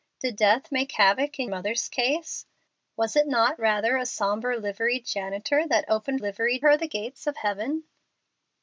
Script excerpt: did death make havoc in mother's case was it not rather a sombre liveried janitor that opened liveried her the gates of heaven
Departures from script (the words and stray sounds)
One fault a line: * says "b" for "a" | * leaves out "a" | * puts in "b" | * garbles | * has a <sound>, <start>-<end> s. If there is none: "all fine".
all fine